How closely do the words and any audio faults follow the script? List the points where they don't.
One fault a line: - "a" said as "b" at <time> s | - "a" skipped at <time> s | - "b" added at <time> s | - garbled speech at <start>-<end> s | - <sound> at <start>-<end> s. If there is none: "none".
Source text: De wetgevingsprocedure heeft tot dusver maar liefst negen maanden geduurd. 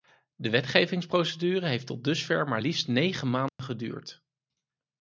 - dropout at 3.5-3.6 s